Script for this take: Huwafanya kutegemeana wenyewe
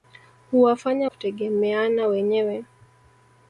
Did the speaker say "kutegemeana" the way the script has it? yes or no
yes